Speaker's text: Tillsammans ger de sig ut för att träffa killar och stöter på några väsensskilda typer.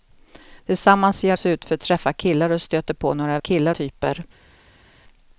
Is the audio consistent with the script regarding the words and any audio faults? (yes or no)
no